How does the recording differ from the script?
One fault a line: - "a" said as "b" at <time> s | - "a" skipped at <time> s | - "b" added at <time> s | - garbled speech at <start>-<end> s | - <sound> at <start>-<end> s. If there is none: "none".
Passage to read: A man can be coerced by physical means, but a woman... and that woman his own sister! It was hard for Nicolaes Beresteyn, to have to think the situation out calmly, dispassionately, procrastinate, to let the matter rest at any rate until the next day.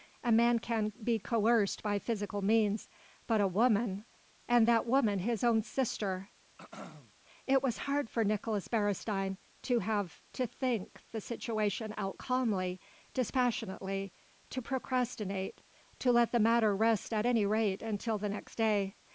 - throat clearing at 6.6-7.1 s
- "to" added at 14.5 s